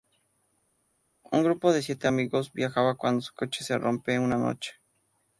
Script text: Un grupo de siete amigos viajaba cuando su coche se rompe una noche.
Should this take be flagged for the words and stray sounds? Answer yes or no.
no